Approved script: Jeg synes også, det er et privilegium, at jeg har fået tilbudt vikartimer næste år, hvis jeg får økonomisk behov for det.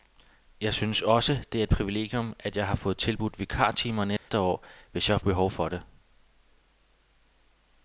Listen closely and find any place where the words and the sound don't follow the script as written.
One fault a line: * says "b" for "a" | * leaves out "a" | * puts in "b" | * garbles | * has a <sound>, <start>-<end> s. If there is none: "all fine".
* has a dropout, 4.2-4.3 s
* leaves out "får økonomisk"